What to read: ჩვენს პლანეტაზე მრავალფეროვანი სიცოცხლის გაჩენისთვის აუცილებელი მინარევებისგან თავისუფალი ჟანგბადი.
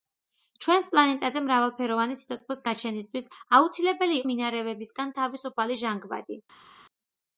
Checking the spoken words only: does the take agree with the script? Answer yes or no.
yes